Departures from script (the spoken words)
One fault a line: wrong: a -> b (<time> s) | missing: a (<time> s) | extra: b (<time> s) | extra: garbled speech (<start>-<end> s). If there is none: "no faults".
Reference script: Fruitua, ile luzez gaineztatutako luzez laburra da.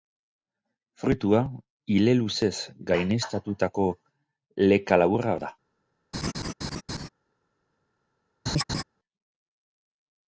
wrong: luzez -> leka (4.7 s)